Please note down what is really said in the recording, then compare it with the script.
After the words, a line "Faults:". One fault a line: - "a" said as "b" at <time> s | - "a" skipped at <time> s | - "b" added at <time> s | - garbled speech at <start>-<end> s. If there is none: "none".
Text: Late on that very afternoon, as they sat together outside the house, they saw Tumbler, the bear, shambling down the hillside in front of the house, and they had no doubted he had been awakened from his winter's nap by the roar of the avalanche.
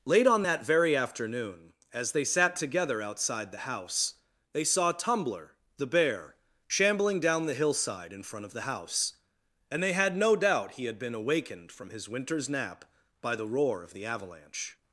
Late on that very afternoon, as they sat together outside the house, they saw Tumbler, the bear, shambling down the hillside in front of the house, and they had no doubt he had been awakened from his winter's nap by the roar of the avalanche.
Faults:
- "doubted" said as "doubt" at 10.4 s